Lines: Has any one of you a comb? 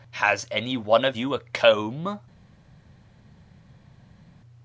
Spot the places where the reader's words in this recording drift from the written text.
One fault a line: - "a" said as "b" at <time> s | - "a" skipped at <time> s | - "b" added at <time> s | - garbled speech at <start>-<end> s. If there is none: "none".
none